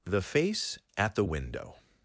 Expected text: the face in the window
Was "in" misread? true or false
true